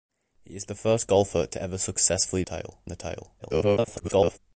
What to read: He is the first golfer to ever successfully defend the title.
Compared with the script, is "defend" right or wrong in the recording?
wrong